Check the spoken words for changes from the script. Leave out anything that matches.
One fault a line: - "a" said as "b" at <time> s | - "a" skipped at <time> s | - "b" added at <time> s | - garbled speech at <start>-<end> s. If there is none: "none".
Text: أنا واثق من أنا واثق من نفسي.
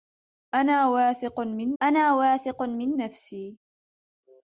none